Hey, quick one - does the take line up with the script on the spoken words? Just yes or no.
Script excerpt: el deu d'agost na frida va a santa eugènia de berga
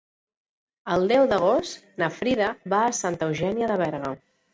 yes